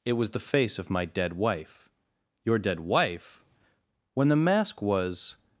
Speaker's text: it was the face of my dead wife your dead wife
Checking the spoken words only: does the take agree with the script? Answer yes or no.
no